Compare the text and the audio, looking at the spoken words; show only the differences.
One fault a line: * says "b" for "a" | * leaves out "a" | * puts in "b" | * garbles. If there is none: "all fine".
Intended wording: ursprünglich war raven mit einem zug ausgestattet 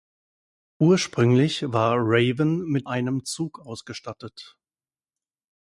all fine